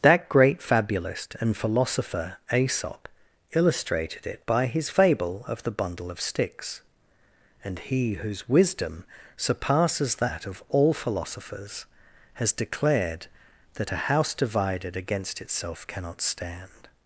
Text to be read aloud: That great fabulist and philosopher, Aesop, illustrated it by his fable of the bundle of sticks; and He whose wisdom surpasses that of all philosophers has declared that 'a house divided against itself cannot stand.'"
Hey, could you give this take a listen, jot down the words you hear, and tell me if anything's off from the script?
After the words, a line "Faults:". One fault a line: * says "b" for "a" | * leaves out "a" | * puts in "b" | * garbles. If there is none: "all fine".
That great fabulist and philosopher, Aesop, illustrated it by his fable of the bundle of sticks; and He whose wisdom surpasses that of all philosophers has declared that 'a house divided against itself cannot stand.'"
Faults:
all fine